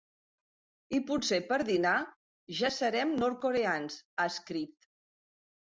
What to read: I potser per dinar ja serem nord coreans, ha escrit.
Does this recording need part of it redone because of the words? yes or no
no